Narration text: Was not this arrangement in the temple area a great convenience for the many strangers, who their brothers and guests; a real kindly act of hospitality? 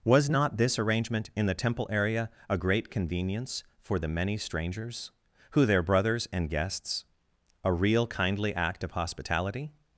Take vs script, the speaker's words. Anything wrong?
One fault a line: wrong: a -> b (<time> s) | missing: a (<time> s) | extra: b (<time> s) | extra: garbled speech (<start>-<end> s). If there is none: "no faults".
no faults